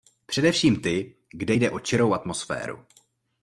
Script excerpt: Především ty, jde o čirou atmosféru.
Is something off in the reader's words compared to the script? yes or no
yes